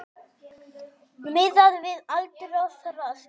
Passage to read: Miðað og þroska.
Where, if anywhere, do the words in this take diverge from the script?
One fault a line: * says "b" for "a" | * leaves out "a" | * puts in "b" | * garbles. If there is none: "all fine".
* puts in "við aldur"